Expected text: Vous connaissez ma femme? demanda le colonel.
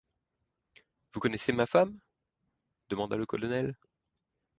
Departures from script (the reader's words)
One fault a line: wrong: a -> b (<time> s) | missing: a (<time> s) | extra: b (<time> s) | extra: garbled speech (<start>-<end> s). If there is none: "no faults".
no faults